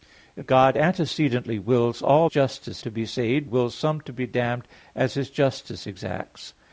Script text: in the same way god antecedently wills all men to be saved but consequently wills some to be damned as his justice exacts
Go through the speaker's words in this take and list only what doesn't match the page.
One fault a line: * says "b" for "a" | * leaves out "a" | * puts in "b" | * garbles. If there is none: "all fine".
* leaves out "the same way"
* says "justice" for "men"
* leaves out "but consequently"